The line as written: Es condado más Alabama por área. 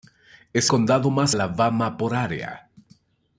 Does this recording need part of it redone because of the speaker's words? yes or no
no